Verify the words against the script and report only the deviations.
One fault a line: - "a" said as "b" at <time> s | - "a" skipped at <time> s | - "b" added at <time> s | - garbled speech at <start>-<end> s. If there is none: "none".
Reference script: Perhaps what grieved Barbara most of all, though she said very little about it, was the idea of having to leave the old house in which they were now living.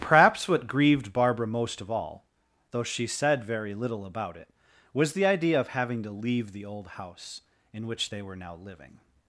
none